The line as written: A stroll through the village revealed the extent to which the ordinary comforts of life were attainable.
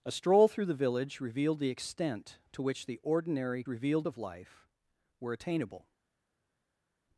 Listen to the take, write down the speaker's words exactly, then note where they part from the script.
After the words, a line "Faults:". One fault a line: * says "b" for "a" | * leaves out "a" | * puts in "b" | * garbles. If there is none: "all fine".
A stroll through the village revealed the extent to which the ordinary revealed of life were attainable.
Faults:
* says "revealed" for "comforts"